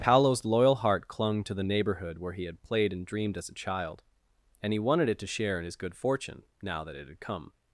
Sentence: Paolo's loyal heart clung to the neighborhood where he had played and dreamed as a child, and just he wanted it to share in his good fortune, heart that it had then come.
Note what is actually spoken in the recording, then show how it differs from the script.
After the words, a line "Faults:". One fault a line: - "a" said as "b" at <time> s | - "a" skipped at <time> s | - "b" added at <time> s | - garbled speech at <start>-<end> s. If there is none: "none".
Paolo's loyal heart clung to the neighborhood where he had played and dreamed as a child, and he wanted it to share in his good fortune, now that it had come.
Faults:
- "just" skipped at 4.7 s
- "heart" said as "now" at 6.6 s
- "then" skipped at 7.2 s